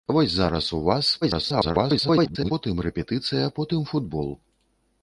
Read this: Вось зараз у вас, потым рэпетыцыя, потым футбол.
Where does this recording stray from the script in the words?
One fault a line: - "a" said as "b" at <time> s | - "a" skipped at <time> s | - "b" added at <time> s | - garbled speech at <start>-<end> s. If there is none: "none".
- garbled speech at 1.2-2.5 s